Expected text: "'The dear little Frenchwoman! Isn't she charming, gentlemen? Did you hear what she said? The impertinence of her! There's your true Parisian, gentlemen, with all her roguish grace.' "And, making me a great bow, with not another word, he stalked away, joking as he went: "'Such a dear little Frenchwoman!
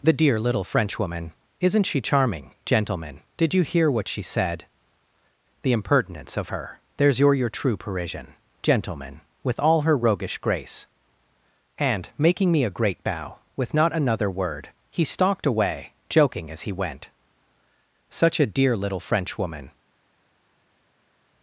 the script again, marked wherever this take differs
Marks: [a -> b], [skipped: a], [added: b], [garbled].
"'The dear little Frenchwoman! Isn't she charming, gentlemen? Did you hear what she said? The impertinence of her! There's your [added: your] true Parisian, gentlemen, with all her roguish grace.' "And, making me a great bow, with not another word, he stalked away, joking as he went: "'Such a dear little Frenchwoman!